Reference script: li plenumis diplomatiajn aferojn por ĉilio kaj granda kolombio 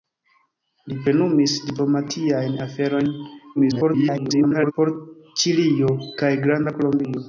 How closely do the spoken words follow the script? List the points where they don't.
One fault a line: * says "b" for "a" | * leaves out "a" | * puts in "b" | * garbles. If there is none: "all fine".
* garbles